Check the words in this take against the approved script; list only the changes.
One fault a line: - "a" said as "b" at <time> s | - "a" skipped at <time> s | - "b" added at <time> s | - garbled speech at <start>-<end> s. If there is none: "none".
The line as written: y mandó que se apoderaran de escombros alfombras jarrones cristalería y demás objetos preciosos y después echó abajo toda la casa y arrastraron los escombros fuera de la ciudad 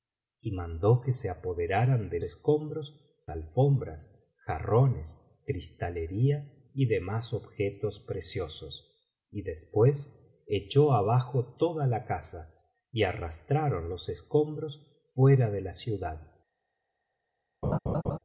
none